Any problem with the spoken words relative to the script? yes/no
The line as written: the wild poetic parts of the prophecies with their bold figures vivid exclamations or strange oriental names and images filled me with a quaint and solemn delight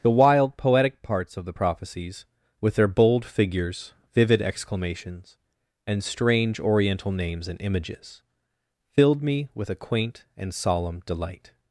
yes